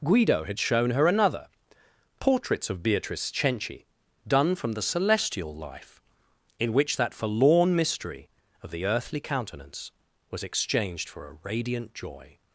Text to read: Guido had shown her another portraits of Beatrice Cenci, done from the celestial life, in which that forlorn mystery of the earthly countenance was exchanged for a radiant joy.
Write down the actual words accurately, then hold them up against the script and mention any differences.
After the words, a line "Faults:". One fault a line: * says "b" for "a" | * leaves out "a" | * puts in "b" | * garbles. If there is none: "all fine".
Guido had shown her another portraits of Beatrice Cenci, done from the celestial life, in which that forlorn mystery of the earthly countenance was exchanged for a radiant joy.
Faults:
all fine